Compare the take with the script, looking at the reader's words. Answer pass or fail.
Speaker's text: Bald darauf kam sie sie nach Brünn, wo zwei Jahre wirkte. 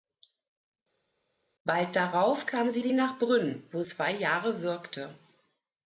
pass